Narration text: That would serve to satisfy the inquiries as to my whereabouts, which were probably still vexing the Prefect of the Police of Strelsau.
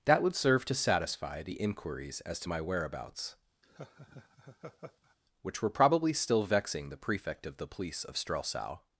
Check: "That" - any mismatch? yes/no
no